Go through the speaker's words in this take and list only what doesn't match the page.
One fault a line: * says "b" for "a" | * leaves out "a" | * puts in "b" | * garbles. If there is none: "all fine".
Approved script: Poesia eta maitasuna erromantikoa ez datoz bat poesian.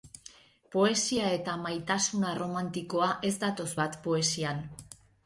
all fine